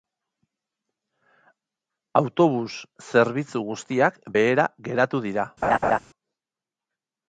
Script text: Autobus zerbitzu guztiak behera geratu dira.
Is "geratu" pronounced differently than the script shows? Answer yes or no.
no